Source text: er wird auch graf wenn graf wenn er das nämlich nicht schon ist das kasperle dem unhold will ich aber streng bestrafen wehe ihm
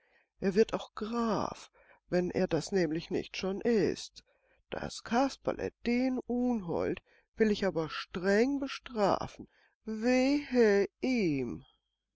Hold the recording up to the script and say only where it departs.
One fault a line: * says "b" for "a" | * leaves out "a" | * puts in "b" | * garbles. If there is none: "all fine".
* leaves out "graf wenn"
* says "den" for "dem"